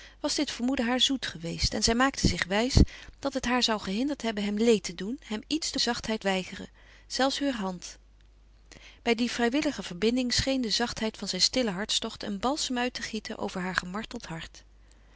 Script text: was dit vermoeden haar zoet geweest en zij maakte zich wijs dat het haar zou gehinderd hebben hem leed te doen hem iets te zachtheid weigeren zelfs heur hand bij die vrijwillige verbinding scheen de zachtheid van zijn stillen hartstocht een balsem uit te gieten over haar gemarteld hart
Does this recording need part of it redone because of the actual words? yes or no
no